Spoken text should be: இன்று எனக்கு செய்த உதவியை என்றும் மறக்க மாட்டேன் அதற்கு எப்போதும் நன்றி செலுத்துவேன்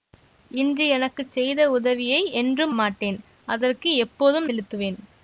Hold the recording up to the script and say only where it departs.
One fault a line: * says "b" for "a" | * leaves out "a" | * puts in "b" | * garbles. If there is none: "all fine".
* leaves out "மறக்க"
* leaves out "நன்றி"